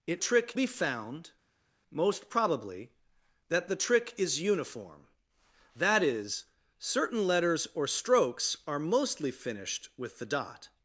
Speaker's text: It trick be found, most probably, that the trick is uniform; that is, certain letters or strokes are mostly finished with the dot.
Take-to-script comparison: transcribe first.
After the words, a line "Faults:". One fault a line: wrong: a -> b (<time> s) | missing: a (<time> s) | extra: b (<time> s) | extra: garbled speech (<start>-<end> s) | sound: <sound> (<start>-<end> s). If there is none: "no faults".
It trick be found, most probably, that the trick is uniform; that is, certain letters or strokes are mostly finished with the dot.
Faults:
no faults